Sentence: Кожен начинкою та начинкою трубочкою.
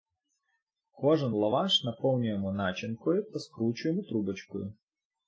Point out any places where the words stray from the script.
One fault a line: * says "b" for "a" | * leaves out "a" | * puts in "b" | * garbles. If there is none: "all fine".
* puts in "лаваш наповнюємо"
* says "скручуємо" for "начинкою"